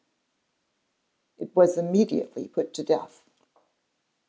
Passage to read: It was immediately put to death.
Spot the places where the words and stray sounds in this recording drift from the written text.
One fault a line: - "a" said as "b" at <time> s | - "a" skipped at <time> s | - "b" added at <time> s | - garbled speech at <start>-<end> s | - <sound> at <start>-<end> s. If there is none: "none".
none